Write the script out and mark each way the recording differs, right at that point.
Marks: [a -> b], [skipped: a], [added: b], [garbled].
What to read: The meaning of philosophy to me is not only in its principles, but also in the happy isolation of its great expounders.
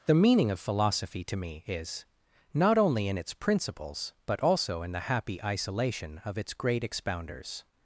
The meaning of philosophy to me is not only in its principles, but also in the happy isolation of its great expounders.